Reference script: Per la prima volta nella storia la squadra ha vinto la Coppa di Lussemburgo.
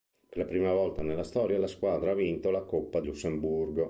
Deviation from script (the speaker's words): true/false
true